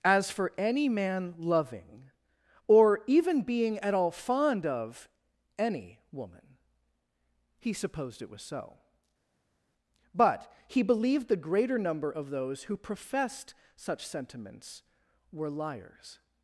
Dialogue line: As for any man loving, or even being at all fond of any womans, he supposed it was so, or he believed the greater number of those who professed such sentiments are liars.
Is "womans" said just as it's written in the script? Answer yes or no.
no